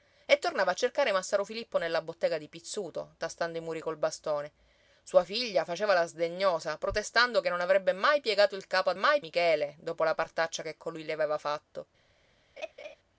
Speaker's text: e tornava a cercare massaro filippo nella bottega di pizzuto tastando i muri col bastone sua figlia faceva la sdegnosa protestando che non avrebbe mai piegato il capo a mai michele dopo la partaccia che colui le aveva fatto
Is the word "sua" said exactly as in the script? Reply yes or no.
yes